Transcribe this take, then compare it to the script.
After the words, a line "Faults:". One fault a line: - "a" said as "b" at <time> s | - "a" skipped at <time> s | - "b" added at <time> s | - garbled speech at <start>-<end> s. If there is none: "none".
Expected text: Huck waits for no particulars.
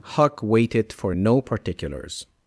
Huck waited for no particulars.
Faults:
- "waits" said as "waited" at 0.4 s